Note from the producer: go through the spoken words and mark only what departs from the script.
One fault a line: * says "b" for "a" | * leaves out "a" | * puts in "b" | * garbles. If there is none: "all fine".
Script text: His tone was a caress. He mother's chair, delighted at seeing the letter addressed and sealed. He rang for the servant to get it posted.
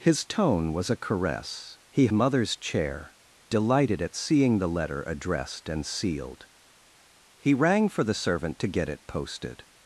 all fine